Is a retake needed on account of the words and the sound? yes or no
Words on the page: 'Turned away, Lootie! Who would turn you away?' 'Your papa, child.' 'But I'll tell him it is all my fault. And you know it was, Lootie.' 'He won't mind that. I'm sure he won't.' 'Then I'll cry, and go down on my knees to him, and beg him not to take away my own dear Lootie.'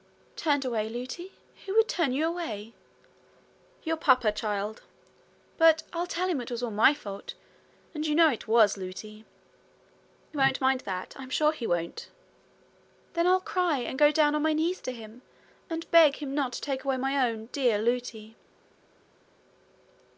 yes